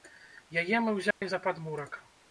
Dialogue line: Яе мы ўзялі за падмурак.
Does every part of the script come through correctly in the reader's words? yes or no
yes